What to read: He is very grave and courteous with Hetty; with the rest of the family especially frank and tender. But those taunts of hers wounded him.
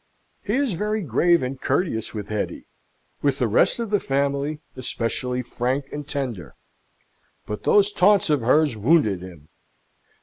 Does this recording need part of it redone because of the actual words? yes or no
no